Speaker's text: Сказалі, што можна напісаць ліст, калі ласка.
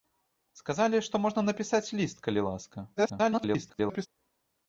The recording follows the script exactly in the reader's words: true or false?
false